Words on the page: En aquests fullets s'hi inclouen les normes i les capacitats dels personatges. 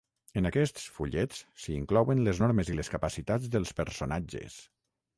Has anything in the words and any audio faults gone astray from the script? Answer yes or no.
no